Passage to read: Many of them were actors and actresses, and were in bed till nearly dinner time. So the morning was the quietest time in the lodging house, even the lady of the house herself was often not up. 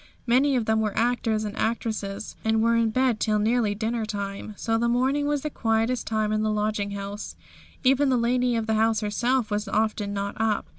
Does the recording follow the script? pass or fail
pass